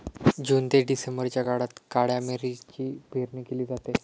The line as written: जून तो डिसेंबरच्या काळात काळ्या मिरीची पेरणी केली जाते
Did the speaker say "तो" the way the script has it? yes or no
no